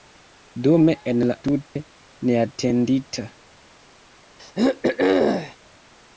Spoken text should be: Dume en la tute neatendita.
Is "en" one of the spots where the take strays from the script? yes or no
no